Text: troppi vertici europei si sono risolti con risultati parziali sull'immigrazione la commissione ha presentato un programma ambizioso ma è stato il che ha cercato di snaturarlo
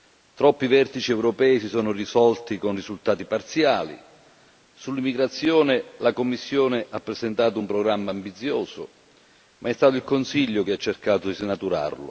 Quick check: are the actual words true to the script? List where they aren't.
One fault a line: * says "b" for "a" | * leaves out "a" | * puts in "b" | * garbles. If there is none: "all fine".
* puts in "consiglio"